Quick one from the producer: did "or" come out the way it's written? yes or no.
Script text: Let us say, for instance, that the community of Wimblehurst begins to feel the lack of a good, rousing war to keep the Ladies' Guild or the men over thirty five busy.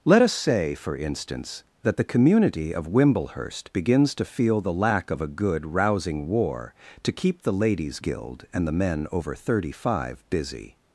no